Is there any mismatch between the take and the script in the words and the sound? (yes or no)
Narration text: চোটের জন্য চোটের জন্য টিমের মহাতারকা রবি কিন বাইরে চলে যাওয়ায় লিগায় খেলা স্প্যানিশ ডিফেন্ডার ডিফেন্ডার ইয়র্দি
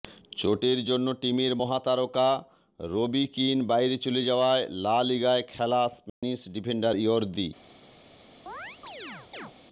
yes